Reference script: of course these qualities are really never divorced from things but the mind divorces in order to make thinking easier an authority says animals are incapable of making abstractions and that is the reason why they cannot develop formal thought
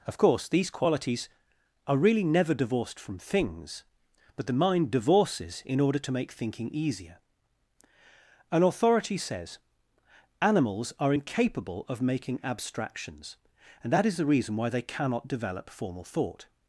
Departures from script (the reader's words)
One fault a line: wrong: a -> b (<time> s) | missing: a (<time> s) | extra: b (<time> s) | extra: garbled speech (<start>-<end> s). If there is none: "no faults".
no faults